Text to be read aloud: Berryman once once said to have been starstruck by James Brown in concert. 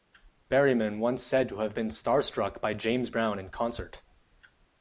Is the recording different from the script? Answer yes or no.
yes